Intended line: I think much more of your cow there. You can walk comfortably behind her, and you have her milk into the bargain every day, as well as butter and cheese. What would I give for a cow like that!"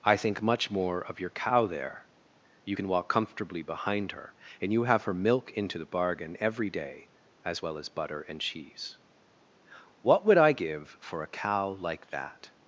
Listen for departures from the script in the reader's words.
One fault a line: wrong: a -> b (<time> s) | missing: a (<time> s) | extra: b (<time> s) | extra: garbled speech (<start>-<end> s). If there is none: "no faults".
no faults